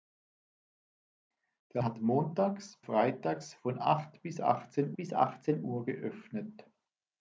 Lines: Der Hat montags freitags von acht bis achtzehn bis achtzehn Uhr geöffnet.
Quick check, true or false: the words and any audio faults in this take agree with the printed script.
true